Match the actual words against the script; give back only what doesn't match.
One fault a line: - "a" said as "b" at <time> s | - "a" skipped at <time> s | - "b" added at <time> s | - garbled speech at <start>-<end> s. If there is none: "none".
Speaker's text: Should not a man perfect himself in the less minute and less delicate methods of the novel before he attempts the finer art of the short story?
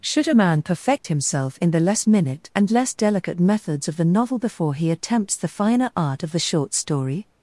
- "not" skipped at 0.3 s